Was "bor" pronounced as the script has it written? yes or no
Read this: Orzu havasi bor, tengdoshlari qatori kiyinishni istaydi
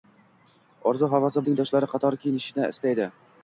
no